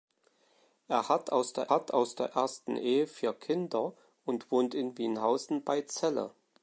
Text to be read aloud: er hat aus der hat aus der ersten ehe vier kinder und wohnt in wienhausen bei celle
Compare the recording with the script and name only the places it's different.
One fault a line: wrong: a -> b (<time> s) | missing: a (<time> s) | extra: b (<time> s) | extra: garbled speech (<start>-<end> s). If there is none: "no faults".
no faults